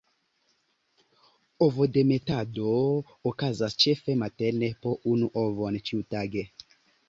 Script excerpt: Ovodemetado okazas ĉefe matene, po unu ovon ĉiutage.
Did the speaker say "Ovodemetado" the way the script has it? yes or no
yes